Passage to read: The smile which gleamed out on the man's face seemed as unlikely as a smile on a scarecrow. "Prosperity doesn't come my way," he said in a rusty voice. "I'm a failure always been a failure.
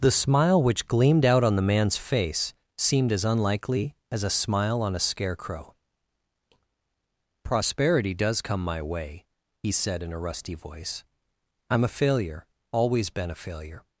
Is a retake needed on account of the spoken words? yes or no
yes